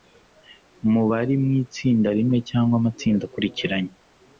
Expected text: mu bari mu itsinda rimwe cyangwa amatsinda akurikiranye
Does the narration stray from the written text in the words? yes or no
no